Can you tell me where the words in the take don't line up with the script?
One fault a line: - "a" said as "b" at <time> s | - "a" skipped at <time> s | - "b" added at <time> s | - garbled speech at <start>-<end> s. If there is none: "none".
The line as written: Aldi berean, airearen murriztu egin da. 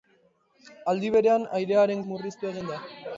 none